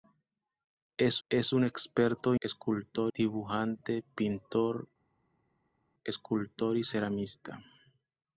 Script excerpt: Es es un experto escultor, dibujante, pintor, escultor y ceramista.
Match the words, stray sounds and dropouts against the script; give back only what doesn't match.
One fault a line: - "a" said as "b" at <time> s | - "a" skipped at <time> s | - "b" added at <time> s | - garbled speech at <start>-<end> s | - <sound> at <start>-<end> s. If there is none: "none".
none